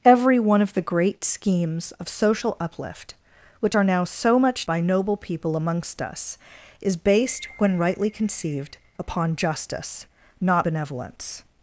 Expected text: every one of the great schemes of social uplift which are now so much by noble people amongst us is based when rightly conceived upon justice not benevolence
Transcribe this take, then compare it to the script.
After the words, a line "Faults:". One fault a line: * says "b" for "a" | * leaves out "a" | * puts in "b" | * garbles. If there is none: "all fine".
every one of the great schemes of social uplift which are now so much by noble people amongst us is based when rightly conceived upon justice not benevolence
Faults:
all fine